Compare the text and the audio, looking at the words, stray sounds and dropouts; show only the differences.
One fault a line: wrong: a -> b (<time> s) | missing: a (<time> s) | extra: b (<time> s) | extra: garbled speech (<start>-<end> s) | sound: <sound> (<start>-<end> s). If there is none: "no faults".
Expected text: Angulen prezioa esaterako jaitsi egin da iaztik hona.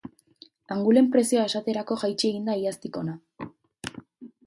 no faults